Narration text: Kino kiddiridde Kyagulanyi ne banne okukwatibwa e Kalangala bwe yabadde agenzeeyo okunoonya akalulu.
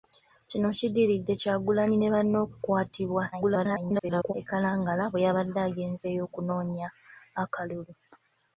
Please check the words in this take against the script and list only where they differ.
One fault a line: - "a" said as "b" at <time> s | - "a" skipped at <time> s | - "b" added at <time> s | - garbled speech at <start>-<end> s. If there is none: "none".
- garbled speech at 3.3-4.3 s